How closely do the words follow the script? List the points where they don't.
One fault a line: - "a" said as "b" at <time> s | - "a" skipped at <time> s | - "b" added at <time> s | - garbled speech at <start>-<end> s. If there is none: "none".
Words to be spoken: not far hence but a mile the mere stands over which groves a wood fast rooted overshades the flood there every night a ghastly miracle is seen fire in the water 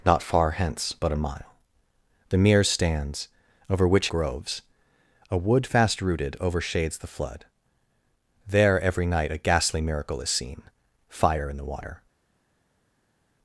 none